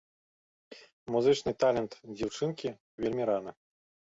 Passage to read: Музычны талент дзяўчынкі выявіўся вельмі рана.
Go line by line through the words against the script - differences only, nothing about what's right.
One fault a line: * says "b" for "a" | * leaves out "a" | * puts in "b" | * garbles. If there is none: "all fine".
* leaves out "выявіўся"